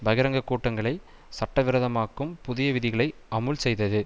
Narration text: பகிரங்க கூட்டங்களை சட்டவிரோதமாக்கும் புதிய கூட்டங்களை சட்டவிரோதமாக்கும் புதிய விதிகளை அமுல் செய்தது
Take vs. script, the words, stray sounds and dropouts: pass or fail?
fail